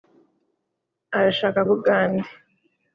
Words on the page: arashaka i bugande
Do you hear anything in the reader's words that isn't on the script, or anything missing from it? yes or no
no